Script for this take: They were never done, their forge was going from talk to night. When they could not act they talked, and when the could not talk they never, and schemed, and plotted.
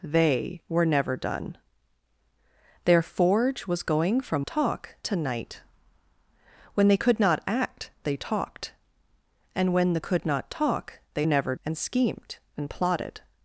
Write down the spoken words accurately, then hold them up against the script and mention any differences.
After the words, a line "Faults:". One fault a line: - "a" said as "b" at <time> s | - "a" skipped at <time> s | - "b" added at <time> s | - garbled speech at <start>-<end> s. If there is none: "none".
They were never done, their forge was going from talk to night. When they could not act they talked, and when the could not talk they never, and schemed, and plotted.
Faults:
none